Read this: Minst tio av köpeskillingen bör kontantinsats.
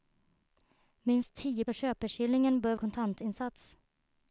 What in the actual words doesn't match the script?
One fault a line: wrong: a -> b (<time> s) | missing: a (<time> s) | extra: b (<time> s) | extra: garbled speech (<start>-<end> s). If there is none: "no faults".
no faults